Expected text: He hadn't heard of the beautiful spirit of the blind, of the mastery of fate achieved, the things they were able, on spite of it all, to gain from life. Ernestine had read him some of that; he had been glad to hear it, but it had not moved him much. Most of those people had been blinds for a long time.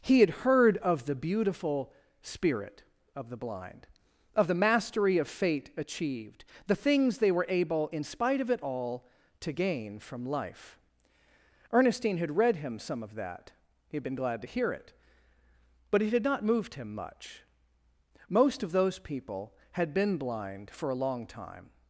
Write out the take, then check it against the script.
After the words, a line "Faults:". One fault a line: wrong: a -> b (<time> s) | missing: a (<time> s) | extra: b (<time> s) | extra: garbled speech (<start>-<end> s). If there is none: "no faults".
He had heard of the beautiful spirit of the blind, of the mastery of fate achieved, the things they were able, in spite of it all, to gain from life. Ernestine had read him some of that; he had been glad to hear it, but it had not moved him much. Most of those people had been blind for a long time.
Faults:
wrong: hadn't -> had (0.2 s)
wrong: on -> in (7.9 s)
wrong: blinds -> blind (20.2 s)